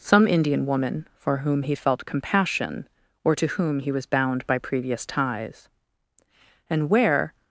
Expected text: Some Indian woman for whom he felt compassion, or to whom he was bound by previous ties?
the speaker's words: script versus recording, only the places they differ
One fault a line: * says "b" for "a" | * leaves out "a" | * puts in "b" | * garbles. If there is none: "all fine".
* puts in "And where"